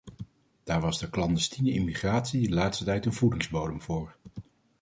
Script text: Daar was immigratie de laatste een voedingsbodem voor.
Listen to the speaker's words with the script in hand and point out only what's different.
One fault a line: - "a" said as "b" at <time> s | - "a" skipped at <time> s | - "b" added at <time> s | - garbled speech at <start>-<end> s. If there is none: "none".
- "de clandestiene" added at 1.0 s
- "tijd" added at 2.8 s